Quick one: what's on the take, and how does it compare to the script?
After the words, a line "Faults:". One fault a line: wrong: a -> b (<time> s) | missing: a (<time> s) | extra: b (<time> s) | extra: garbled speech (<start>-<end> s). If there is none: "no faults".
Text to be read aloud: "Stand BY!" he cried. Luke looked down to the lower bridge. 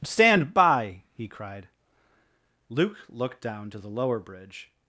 "Stand BY!" he cried. Luke looked down to the lower bridge.
Faults:
no faults